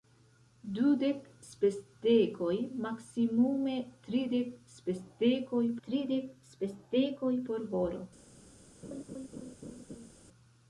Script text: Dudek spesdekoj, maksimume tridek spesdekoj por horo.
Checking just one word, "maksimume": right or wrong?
right